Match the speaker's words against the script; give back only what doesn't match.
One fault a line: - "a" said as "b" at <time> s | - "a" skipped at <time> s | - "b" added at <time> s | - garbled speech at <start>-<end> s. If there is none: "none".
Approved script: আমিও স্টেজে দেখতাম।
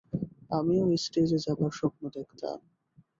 - "যাবার স্বপ্ন" added at 1.4 s